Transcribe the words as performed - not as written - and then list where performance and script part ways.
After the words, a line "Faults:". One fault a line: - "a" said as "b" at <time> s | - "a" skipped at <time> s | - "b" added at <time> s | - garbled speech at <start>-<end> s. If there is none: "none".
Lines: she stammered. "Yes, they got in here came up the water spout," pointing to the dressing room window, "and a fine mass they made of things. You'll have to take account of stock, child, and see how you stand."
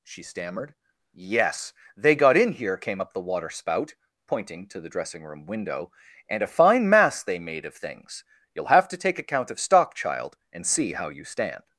she stammered. "Yes, they got in here came up the water spout," pointing to the dressing room window, "and a fine mass they made of things. You'll have to take account of stock, child, and see how you stand."
Faults:
none